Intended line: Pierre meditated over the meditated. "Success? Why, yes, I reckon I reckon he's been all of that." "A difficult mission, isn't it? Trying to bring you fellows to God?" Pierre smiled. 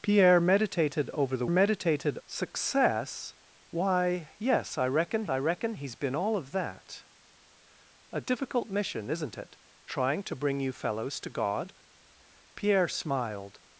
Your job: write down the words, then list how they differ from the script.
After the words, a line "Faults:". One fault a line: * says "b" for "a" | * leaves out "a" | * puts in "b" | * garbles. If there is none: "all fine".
Pierre meditated over the meditated. "Success? Why, yes, I reckon I reckon he's been all of that." "A difficult mission, isn't it? Trying to bring you fellows to God?" Pierre smiled.
Faults:
all fine